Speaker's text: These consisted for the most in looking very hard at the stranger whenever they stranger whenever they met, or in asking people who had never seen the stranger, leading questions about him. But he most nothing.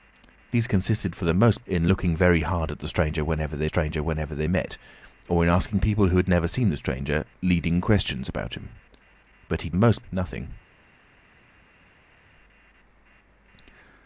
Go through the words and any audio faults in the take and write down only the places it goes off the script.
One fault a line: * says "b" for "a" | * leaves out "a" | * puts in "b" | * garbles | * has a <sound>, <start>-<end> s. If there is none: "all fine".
all fine